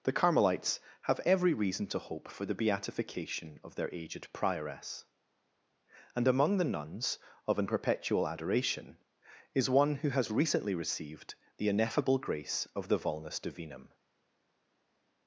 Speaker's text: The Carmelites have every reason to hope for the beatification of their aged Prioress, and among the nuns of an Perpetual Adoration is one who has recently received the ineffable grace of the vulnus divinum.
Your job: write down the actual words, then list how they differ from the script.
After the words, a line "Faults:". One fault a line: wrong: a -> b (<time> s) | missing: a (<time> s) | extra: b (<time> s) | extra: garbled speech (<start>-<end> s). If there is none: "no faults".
The Carmelites have every reason to hope for the beatification of their aged Prioress, and among the nuns of an Perpetual Adoration is one who has recently received the ineffable grace of the vulnus divinum.
Faults:
no faults